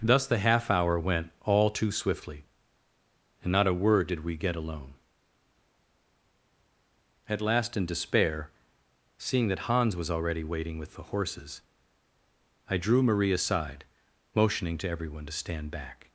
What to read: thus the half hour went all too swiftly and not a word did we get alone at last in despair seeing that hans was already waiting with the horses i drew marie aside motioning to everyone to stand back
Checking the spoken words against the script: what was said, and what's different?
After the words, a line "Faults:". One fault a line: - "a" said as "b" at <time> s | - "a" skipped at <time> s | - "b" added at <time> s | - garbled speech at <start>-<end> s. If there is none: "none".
thus the half hour went all too swiftly and not a word did we get alone at last in despair seeing that hans was already waiting with the horses i drew marie aside motioning to everyone to stand back
Faults:
none